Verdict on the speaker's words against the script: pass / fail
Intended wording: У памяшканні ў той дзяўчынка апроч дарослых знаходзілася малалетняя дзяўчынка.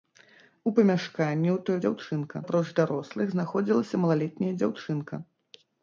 pass